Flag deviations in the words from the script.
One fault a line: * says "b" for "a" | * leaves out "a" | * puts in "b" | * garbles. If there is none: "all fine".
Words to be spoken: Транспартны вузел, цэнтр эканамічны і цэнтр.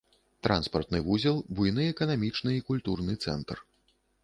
* says "буйны" for "цэнтр"
* puts in "культурны"